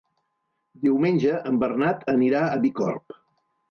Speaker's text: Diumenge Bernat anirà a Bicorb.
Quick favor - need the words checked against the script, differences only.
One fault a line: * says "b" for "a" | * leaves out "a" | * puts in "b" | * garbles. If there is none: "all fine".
* puts in "en"